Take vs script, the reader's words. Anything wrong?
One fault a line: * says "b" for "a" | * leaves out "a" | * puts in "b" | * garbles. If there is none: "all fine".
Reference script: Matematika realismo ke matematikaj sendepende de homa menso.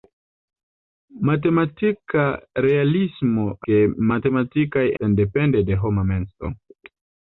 all fine